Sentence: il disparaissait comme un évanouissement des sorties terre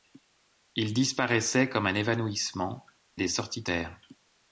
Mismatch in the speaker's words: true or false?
false